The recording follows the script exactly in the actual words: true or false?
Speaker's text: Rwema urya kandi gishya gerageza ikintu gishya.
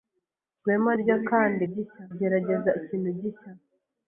true